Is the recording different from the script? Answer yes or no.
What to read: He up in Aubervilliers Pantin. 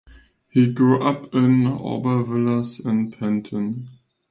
yes